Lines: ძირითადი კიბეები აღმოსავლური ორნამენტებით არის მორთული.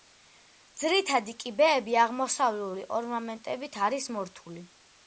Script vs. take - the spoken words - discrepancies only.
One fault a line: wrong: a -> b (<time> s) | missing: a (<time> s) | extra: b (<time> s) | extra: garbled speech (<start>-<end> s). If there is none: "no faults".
no faults